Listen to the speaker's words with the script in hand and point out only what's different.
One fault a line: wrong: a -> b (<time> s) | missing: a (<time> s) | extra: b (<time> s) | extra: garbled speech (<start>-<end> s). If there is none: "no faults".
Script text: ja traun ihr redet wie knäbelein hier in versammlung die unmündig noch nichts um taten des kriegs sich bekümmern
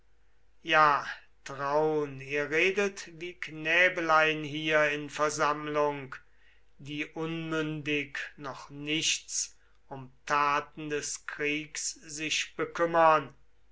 no faults